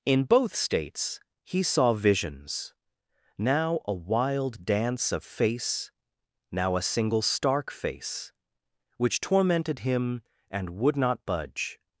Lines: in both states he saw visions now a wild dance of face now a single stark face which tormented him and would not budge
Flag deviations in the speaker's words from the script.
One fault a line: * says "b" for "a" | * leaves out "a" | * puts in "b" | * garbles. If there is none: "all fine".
all fine